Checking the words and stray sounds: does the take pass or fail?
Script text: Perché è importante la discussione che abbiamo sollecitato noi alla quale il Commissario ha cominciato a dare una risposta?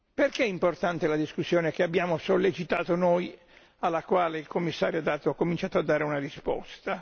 pass